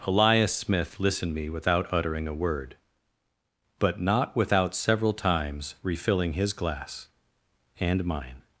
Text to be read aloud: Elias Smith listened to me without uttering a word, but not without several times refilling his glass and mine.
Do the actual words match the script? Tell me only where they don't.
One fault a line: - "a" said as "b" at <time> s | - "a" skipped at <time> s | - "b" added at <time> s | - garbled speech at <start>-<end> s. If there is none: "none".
- "to" skipped at 1.4 s